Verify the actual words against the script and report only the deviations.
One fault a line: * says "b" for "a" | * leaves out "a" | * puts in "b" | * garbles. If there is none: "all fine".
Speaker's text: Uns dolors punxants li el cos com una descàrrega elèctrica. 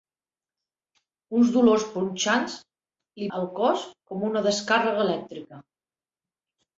all fine